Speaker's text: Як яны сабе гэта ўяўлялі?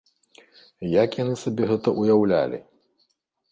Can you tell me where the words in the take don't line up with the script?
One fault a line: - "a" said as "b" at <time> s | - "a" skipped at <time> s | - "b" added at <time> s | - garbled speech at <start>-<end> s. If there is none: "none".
none